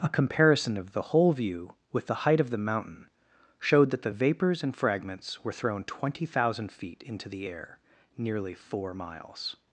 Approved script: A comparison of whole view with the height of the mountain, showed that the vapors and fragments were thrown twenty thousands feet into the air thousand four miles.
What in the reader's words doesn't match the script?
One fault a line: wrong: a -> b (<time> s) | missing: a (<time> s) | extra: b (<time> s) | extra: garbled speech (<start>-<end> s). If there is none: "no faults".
extra: the (0.9 s)
wrong: thousands -> thousand (6.2 s)
wrong: thousand -> nearly (8.2 s)